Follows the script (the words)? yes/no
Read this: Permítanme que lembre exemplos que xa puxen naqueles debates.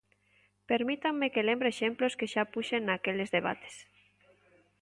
yes